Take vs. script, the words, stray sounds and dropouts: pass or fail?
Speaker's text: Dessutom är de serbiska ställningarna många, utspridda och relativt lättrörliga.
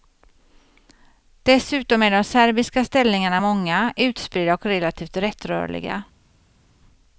pass